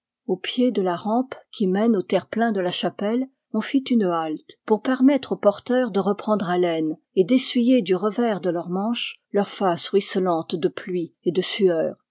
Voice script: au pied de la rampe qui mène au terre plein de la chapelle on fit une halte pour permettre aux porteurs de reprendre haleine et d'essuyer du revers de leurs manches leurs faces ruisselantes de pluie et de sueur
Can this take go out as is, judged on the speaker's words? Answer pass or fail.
pass